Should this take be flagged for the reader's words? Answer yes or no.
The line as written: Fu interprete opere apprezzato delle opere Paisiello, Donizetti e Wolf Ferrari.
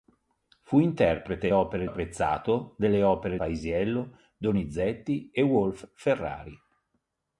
no